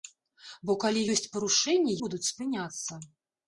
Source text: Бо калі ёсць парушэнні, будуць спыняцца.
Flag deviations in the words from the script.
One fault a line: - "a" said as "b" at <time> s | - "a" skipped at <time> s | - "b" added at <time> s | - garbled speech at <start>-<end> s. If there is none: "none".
none